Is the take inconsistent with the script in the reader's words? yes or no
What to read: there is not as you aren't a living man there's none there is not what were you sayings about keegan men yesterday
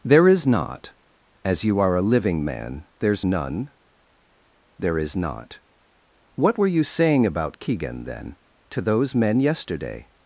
yes